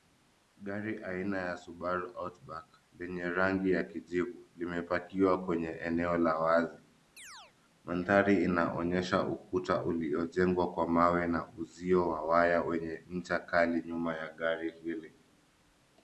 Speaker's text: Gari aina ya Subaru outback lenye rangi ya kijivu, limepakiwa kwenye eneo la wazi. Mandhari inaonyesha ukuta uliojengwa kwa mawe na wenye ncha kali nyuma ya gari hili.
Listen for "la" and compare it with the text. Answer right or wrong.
right